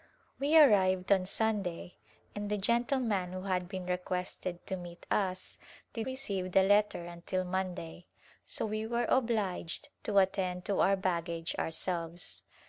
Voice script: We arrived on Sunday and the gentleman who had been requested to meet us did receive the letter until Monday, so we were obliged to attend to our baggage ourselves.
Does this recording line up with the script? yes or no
yes